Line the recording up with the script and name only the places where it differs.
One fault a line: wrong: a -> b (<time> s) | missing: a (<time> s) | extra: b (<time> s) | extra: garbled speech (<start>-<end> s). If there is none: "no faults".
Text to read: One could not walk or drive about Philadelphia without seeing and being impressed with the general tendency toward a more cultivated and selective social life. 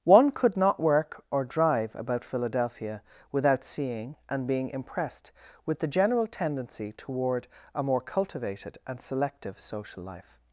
wrong: walk -> work (0.8 s)